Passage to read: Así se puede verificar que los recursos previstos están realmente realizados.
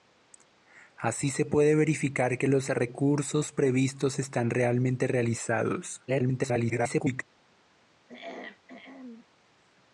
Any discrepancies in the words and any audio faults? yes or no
yes